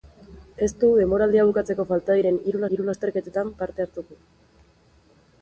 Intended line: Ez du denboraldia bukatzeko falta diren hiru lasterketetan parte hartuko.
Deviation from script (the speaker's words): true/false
true